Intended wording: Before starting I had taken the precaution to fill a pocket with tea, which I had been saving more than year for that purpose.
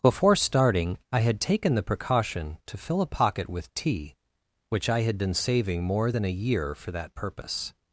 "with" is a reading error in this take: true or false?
false